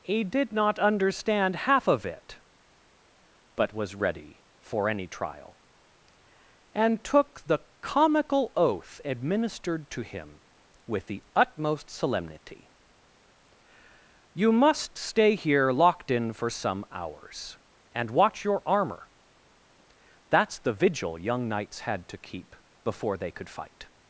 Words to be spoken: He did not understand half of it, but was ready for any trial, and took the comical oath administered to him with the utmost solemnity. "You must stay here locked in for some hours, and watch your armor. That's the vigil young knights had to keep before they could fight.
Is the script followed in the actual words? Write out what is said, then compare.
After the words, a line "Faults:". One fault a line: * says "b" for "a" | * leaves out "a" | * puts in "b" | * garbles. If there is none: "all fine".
He did not understand half of it, but was ready for any trial, and took the comical oath administered to him with the utmost solemnity. "You must stay here locked in for some hours, and watch your armor. That's the vigil young knights had to keep before they could fight.
Faults:
all fine